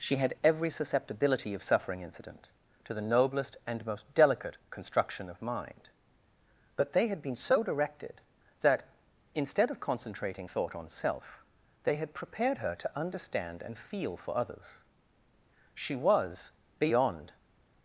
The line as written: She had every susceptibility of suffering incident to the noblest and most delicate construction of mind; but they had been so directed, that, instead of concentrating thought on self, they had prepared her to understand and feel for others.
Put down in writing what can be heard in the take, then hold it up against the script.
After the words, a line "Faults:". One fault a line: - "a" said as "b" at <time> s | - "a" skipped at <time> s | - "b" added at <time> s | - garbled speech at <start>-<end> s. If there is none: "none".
She had every susceptibility of suffering incident to the noblest and most delicate construction of mind; but they had been so directed, that, instead of concentrating thought on self, they had prepared her to understand and feel for others. She was, beyond
Faults:
- "She was beyond" added at 15.7 s